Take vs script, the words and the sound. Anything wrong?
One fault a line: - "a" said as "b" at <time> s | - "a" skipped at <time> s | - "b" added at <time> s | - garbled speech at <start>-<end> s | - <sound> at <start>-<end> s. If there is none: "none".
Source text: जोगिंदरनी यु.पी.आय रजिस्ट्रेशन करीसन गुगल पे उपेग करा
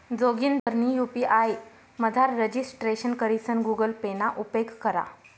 - dropout at 0.6-0.7 s
- "मझार" added at 2.0 s
- "ना" added at 4.1 s